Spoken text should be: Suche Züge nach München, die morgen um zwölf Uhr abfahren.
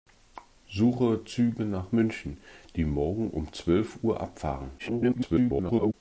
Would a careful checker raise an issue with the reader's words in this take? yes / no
yes